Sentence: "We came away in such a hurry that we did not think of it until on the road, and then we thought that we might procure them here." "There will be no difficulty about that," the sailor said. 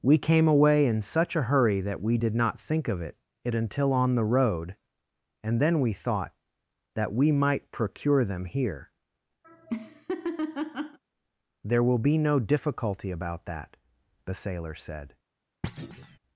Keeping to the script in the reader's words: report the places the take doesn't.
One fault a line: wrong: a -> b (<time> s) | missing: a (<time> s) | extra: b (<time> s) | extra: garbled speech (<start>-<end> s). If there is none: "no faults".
extra: it (3.4 s)